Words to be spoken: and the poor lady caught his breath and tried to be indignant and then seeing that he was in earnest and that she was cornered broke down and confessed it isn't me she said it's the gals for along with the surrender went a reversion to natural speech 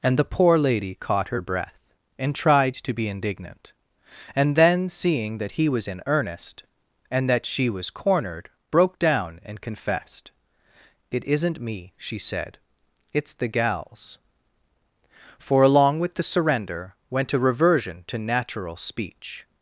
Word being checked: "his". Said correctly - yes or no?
no